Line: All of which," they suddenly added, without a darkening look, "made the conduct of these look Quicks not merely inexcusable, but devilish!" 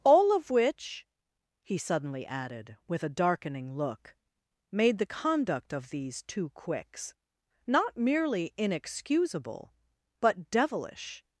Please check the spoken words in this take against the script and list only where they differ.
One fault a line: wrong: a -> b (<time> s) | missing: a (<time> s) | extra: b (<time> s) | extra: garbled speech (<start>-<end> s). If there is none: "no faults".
wrong: they -> he (1.6 s)
wrong: without -> with (2.9 s)
wrong: look -> two (6.2 s)